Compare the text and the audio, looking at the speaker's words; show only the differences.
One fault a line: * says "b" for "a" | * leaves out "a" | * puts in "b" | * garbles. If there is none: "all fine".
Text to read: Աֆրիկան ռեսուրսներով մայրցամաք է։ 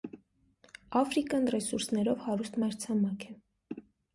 * puts in "հարուստ"